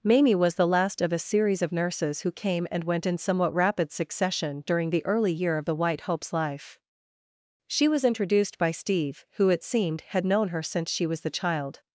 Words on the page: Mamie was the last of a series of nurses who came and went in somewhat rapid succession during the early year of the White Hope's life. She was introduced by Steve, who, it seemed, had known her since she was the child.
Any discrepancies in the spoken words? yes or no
no